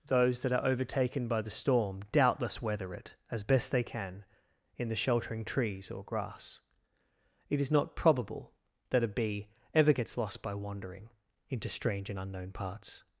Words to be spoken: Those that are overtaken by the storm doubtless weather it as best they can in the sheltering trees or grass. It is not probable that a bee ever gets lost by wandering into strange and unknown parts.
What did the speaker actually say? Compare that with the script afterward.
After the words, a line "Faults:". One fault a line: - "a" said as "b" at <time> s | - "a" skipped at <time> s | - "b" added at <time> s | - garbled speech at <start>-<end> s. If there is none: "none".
Those that are overtaken by the storm doubtless weather it as best they can in the sheltering trees or grass. It is not probable that a bee ever gets lost by wandering into strange and unknown parts.
Faults:
none